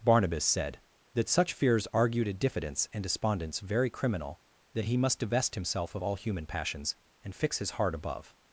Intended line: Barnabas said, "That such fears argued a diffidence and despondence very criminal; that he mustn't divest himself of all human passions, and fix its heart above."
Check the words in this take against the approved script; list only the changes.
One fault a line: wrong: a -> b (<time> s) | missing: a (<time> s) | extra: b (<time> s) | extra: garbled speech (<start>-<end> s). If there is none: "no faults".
wrong: mustn't -> must (5.0 s)
wrong: its -> his (7.6 s)